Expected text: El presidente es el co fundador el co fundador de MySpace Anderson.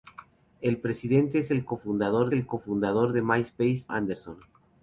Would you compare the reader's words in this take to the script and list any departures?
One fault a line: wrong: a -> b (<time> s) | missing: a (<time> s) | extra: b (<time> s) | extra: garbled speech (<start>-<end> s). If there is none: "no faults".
no faults